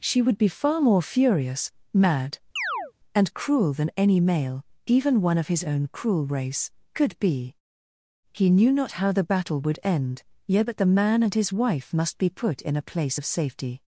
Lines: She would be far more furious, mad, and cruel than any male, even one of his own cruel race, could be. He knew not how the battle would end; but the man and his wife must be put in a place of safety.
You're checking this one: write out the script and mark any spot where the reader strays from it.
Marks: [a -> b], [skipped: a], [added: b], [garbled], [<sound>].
She would be far more furious, mad, [chirp] and cruel than any male, even one of his own cruel race, could be. He knew not how the battle would end; [added: yet] but the man and his wife must be put in a place of safety.